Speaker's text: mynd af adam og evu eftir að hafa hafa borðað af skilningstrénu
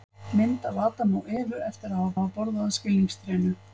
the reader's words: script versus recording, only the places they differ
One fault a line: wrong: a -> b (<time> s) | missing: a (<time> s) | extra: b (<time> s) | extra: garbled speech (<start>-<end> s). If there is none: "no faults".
no faults